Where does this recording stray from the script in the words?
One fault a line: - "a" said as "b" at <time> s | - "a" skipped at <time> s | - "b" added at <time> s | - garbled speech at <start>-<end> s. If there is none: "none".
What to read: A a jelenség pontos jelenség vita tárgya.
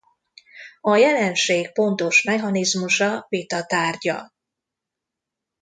- "a" skipped at 0.9 s
- "jelenség" said as "mechanizmusa" at 2.2 s